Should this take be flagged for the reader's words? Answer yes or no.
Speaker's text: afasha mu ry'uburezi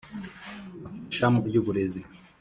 no